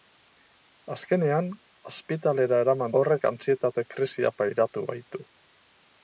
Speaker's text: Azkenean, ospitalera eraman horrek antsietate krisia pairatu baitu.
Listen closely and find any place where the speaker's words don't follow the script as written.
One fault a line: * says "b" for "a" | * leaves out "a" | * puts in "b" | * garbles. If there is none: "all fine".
all fine